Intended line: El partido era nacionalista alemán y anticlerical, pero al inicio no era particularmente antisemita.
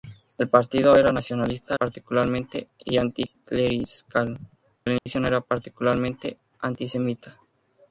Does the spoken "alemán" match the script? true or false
false